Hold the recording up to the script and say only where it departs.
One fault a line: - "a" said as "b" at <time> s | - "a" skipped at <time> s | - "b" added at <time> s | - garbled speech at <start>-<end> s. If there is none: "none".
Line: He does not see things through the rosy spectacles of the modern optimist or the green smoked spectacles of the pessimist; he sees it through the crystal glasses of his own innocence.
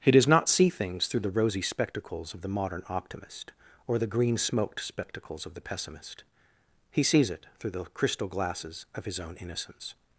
none